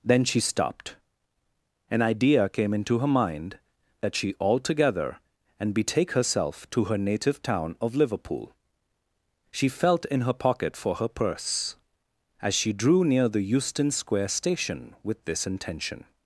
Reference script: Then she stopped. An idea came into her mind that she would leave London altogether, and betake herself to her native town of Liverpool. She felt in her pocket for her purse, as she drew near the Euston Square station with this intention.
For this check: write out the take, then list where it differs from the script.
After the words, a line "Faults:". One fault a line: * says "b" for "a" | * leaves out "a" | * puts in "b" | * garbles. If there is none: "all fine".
Then she stopped. An idea came into her mind that she altogether, and betake herself to her native town of Liverpool. She felt in her pocket for her purse, as she drew near the Euston Square station with this intention.
Faults:
* leaves out "would leave London"